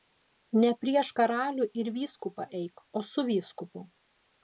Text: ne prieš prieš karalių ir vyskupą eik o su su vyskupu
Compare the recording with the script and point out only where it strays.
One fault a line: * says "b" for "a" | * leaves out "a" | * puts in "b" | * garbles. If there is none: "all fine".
* leaves out "prieš"
* leaves out "su"